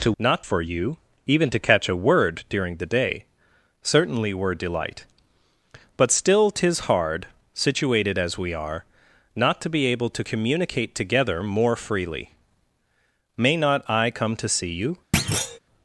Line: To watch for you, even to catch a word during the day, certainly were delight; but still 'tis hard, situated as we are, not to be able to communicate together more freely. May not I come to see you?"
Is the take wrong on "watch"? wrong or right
wrong